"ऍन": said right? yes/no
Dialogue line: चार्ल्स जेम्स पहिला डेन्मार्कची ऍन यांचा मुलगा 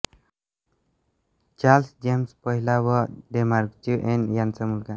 yes